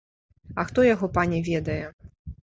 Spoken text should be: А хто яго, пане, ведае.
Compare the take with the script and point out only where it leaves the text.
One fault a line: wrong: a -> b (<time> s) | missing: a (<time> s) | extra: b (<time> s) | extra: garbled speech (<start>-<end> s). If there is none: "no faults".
no faults